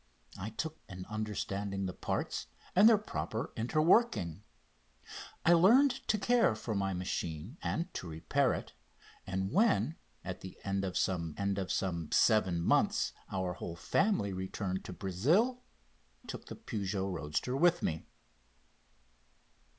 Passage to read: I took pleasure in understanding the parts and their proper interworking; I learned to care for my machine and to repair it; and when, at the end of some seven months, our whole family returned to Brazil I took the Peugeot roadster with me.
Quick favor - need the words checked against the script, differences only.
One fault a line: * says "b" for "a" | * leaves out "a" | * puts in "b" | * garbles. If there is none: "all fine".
* leaves out "pleasure"
* puts in "end of some"
* leaves out "I"